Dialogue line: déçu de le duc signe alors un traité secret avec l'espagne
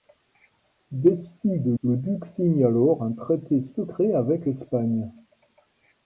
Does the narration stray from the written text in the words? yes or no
no